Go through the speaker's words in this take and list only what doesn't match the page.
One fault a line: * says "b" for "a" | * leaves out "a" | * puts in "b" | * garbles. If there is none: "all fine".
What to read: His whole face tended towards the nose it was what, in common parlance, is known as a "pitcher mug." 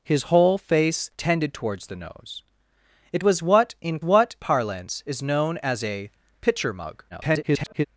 * says "what" for "common"
* garbles